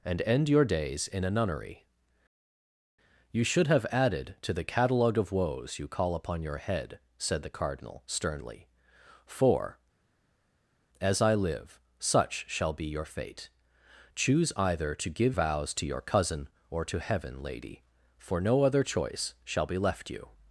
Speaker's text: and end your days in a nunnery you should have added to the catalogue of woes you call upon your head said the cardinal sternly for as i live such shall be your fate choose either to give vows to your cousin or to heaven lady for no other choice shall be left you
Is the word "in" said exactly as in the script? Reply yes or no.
yes